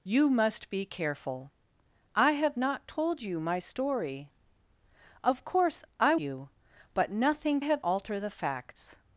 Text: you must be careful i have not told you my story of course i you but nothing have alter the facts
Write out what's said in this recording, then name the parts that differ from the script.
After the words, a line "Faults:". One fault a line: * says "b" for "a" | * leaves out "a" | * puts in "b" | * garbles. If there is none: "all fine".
you must be careful i have not told you my story of course i you but nothing have alter the facts
Faults:
all fine